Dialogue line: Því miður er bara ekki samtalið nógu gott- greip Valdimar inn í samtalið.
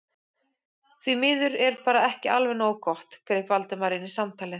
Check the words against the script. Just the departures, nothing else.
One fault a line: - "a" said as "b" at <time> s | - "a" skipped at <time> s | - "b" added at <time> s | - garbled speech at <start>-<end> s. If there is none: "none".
- "samtalið" said as "alveg" at 2.4 s